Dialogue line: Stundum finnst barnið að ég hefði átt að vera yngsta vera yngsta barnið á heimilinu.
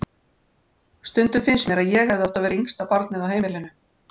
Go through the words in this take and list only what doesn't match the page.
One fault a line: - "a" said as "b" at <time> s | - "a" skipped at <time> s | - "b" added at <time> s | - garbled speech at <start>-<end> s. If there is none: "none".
- "barnið" said as "mér" at 1.7 s
- "vera yngsta" skipped at 2.9 s